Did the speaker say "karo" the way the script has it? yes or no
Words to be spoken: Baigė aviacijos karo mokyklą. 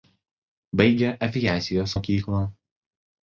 no